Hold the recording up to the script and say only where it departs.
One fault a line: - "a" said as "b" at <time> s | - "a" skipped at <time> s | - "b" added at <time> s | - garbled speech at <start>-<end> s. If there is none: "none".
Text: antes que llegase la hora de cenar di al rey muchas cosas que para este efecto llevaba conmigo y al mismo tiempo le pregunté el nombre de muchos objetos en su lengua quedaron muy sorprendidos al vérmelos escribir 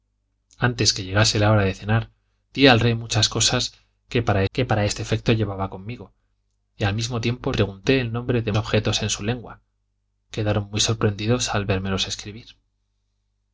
- "que para" added at 4.5 s
- "le" skipped at 7.5 s
- "muchos" skipped at 8.5 s